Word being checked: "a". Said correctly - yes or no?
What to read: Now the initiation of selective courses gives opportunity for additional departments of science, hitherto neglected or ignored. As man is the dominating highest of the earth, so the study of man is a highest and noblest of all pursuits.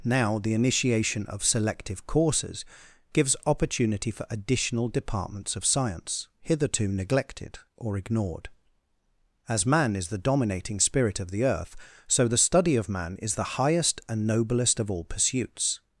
no